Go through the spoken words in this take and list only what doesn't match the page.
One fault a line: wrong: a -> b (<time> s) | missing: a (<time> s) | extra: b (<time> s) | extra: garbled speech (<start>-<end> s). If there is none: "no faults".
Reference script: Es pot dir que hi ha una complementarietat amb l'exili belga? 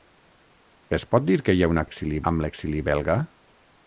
wrong: complementarietat -> l'exili (1.8 s)